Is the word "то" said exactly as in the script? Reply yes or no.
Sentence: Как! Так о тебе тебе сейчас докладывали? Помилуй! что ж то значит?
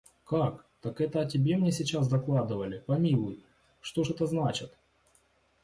no